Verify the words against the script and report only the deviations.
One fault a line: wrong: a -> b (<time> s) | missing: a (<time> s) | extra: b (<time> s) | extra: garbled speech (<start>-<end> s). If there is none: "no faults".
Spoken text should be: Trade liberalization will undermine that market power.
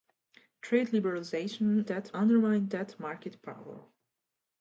wrong: will -> that (1.9 s)